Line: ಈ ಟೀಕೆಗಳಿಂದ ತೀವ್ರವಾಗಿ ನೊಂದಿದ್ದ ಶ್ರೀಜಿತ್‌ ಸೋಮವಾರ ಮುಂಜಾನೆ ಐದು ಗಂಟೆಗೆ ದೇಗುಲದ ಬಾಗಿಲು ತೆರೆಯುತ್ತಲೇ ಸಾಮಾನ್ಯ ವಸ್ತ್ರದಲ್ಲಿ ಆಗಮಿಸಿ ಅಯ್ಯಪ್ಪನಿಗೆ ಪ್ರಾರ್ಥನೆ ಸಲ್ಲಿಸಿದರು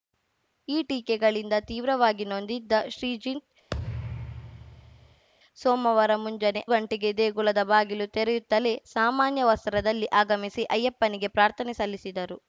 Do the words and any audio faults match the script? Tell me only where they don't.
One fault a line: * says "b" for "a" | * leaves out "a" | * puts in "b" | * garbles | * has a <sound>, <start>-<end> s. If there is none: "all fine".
* has a thud, 3.7-5.3 s
* leaves out "ಐದು"